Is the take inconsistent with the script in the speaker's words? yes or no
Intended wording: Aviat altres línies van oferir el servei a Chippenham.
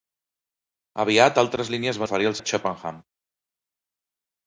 yes